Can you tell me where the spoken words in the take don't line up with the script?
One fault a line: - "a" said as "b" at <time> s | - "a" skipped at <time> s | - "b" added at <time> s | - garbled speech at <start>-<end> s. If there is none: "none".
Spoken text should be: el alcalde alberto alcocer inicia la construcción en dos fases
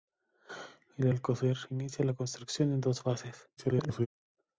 - "alcalde alberto" skipped at 1.1 s
- garbled speech at 3.6-4.1 s